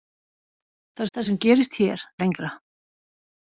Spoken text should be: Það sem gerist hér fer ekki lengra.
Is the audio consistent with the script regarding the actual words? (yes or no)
no